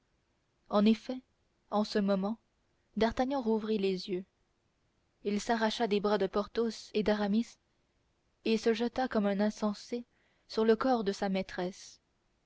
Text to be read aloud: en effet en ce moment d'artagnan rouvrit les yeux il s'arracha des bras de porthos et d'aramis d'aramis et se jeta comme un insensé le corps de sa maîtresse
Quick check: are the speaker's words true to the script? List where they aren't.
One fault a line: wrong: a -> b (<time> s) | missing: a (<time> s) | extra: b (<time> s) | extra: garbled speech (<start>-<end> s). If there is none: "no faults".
missing: d'aramis (7.6 s)
extra: sur (10.5 s)